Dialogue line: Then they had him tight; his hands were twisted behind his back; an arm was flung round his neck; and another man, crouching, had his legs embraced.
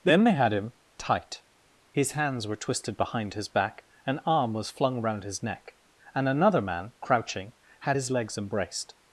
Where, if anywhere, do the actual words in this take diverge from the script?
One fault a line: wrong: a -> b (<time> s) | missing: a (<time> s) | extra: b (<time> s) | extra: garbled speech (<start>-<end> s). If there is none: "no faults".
no faults